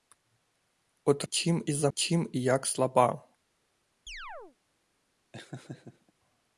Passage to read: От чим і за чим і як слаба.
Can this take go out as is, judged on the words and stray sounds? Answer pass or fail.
fail